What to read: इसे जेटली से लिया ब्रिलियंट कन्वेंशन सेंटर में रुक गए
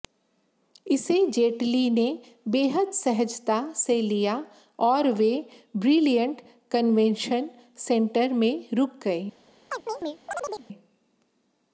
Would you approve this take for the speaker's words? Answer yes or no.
no